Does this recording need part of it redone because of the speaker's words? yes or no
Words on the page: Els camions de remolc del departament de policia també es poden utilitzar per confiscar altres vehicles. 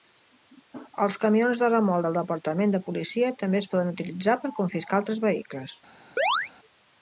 no